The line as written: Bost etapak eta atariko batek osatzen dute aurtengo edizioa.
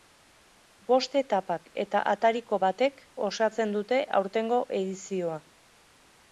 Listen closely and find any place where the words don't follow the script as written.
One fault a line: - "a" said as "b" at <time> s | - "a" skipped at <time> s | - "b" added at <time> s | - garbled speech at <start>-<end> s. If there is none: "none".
none